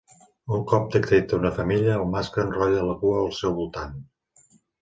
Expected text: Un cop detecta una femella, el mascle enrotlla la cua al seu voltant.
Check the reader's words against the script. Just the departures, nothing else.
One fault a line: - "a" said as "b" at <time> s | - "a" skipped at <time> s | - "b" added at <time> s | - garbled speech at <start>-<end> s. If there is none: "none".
none